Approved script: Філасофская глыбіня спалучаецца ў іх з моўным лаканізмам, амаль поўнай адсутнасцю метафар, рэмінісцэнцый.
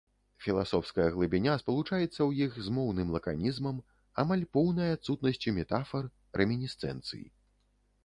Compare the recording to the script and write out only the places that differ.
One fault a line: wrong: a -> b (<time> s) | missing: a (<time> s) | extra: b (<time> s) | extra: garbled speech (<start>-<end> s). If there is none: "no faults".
no faults